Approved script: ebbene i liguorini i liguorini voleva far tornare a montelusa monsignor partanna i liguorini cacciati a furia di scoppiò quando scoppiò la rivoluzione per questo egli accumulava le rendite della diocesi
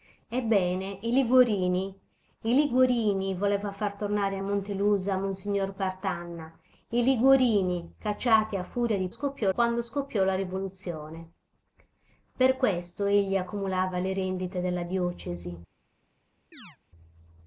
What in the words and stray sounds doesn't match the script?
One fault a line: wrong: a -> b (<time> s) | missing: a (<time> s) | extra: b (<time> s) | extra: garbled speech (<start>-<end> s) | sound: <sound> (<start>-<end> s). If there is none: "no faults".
sound: chirp (16.5-16.8 s)